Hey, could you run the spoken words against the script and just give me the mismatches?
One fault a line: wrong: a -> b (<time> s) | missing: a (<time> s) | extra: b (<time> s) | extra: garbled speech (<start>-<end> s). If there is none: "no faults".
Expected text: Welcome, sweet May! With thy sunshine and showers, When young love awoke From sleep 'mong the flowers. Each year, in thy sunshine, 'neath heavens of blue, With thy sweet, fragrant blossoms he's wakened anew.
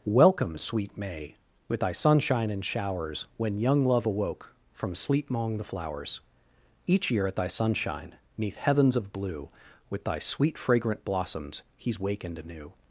wrong: in -> at (7.3 s)